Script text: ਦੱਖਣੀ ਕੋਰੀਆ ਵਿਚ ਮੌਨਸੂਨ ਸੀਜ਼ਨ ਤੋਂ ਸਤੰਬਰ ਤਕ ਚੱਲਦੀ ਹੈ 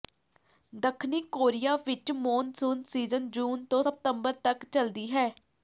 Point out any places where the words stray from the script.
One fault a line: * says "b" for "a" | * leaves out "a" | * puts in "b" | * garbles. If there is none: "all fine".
* puts in "ਜੂਨ"